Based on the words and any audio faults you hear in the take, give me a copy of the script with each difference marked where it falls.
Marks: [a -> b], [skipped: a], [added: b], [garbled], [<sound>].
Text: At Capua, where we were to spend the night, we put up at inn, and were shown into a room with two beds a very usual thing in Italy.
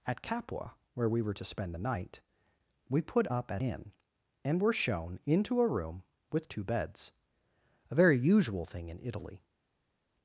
At Capua, where we were to spend the night, we put up at inn, and were shown into a room with two beds a very usual thing in Italy.